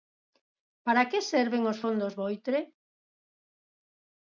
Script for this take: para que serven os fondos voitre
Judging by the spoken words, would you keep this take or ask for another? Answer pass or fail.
pass